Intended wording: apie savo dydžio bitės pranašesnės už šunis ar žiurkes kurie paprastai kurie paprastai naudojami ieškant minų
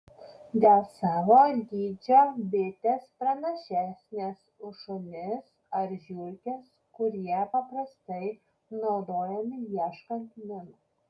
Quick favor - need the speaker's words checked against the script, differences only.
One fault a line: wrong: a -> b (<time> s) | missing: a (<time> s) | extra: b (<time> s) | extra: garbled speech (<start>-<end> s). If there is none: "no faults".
wrong: apie -> dėl (0.6 s)
missing: kurie paprastai (8.2 s)